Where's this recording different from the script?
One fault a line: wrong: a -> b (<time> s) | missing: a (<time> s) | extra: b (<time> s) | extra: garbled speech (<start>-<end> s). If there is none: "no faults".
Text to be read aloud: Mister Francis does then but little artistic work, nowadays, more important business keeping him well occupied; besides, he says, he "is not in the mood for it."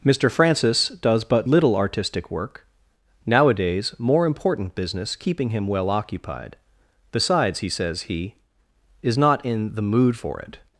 missing: then (1.2 s)